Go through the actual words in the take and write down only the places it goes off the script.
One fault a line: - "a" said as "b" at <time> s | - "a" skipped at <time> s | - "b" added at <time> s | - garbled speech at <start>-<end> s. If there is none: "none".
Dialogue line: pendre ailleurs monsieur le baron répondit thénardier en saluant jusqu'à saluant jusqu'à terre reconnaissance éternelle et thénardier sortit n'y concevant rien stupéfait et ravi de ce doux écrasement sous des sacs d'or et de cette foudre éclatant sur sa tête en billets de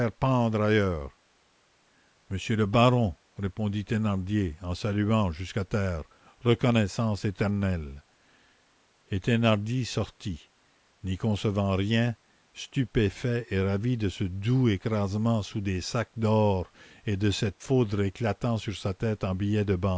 - "saluant jusqu'à" skipped at 5.7 s